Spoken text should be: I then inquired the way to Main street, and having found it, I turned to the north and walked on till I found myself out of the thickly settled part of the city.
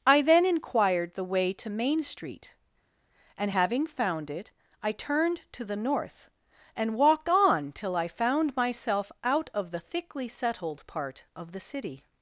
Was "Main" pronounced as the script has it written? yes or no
yes